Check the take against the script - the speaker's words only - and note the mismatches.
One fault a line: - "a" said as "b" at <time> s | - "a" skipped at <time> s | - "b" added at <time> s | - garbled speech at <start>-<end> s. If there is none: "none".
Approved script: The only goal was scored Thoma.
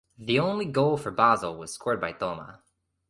- "for Basel" added at 1.0 s
- "by" added at 2.0 s